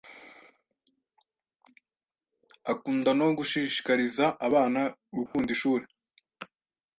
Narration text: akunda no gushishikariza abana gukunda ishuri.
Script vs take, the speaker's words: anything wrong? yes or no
no